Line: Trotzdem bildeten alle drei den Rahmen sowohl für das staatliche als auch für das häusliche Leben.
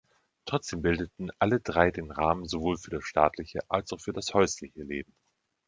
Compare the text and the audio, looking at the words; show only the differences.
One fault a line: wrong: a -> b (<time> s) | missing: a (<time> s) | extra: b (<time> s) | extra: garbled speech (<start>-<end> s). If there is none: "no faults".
no faults